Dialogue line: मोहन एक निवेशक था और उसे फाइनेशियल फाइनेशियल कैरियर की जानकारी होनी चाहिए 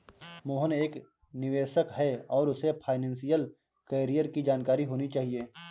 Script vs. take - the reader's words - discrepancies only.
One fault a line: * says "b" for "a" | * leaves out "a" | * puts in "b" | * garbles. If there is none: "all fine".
* says "है" for "था"
* leaves out "फाइनेशियल"